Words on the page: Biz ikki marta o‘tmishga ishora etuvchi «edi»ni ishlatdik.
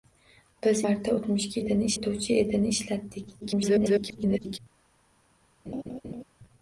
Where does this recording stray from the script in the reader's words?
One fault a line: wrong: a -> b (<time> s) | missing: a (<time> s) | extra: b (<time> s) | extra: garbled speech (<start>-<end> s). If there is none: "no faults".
missing: ikki (0.8 s)
wrong: ishora -> edi»ni (1.6 s)
extra: garbled speech (3.4-4.6 s)